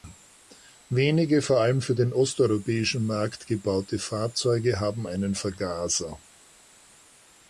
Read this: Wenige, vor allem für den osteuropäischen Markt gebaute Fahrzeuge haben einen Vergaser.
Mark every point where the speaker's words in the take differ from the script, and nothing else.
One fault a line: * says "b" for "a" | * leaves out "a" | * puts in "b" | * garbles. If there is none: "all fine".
all fine